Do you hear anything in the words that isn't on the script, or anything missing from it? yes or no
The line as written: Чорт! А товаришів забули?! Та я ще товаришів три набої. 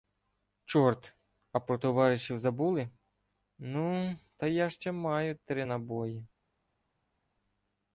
yes